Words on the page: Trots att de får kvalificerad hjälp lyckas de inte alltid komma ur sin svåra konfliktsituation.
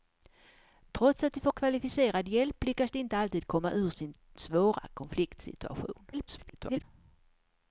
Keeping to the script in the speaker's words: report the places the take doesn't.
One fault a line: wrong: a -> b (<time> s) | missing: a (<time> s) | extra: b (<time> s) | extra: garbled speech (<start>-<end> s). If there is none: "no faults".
extra: garbled speech (6.1-6.8 s)